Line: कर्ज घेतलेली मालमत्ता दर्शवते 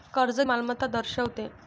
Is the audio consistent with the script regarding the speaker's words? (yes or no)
no